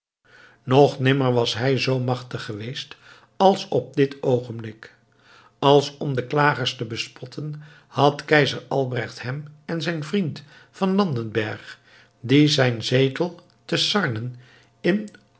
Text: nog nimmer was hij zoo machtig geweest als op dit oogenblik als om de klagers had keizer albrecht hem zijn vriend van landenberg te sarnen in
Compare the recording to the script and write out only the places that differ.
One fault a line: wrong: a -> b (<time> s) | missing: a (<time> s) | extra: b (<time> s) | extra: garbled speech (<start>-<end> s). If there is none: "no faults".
extra: te bespotten (6.8 s)
extra: en (9.7 s)
extra: die zijn zetel (12.2 s)